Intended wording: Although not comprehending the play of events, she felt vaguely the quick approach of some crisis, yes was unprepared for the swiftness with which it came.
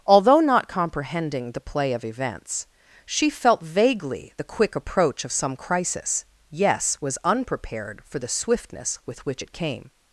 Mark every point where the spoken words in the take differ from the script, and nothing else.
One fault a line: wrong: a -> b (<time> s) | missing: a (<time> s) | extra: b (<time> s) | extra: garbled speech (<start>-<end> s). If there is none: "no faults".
no faults